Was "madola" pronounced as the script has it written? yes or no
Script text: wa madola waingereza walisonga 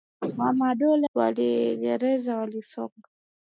yes